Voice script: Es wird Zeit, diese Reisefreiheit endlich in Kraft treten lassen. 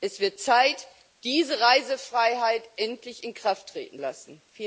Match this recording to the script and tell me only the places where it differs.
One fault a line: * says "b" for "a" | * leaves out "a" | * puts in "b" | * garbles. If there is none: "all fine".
all fine